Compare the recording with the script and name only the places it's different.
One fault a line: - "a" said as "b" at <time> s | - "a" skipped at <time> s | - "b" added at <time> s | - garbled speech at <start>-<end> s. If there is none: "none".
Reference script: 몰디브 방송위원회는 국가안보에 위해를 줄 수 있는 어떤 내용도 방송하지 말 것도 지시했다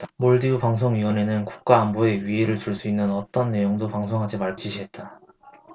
- "것도" skipped at 4.6 s